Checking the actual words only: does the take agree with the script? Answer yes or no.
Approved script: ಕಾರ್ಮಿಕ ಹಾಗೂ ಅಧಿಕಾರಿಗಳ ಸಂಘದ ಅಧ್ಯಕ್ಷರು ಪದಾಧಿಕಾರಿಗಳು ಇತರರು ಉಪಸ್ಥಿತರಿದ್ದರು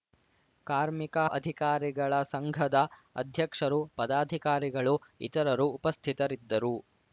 no